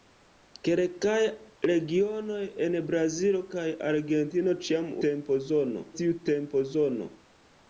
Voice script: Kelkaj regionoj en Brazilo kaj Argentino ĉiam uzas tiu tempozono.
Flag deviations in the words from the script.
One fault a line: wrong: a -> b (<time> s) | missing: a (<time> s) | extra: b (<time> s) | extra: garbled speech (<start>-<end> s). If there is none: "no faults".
wrong: uzas -> tempozono (5.1 s)